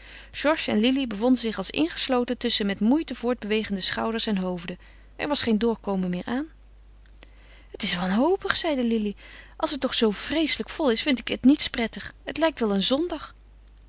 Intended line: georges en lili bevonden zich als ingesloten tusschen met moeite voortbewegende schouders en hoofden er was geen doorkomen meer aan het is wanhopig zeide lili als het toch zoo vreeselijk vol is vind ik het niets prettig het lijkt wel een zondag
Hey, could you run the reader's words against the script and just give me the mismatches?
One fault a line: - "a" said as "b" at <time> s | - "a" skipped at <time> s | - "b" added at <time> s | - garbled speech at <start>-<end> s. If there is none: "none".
none